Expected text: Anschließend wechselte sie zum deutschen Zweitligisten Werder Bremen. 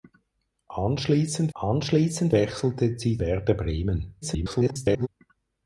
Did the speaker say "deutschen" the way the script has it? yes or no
no